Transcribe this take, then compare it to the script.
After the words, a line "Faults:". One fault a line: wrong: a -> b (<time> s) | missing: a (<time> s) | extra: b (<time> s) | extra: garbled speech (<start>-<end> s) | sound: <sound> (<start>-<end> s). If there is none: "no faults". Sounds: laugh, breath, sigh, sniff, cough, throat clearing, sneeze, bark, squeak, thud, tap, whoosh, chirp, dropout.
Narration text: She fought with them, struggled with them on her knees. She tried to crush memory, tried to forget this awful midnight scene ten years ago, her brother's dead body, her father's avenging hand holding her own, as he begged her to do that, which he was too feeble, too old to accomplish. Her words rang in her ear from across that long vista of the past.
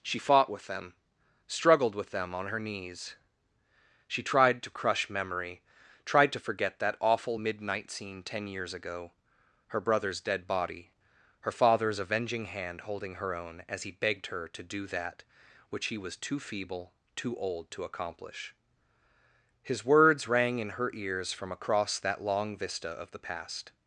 She fought with them, struggled with them on her knees. She tried to crush memory, tried to forget that awful midnight scene ten years ago, her brother's dead body, her father's avenging hand holding her own, as he begged her to do that, which he was too feeble, too old to accomplish. His words rang in her ears from across that long vista of the past.
Faults:
wrong: this -> that (6.8 s)
wrong: Her -> His (19.6 s)
wrong: ear -> ears (20.9 s)